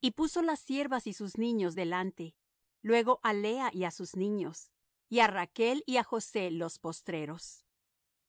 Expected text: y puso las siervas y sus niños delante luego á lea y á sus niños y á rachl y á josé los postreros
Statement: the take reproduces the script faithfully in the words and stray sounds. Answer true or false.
true